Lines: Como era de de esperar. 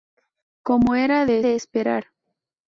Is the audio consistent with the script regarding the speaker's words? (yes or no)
yes